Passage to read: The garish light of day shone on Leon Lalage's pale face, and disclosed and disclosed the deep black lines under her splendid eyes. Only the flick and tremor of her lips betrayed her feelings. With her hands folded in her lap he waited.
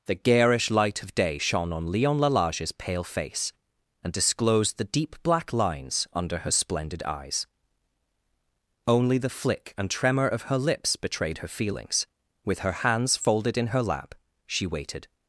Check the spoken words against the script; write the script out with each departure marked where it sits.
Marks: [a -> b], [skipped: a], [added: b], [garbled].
The garish light of day shone on Leon Lalage's pale face, and disclosed [skipped: and disclosed] the deep black lines under her splendid eyes. Only the flick and tremor of her lips betrayed her feelings. With her hands folded in her lap [he -> she] waited.